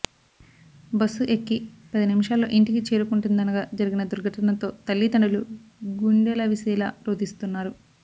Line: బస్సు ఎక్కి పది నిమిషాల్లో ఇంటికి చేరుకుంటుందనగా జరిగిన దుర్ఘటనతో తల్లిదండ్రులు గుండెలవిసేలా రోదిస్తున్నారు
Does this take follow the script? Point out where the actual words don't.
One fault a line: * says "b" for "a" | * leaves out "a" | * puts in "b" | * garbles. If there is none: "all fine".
all fine